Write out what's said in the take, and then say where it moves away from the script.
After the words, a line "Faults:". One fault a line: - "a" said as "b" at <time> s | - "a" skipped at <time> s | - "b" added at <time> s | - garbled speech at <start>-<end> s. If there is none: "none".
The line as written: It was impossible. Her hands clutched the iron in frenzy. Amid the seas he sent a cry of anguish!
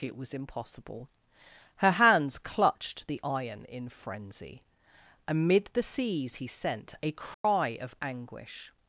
It was impossible. Her hands clutched the iron in frenzy. Amid the seas he sent a cry of anguish!
Faults:
none